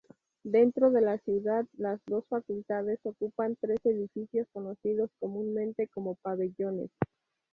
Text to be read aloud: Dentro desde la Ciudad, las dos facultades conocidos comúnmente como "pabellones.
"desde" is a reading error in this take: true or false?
true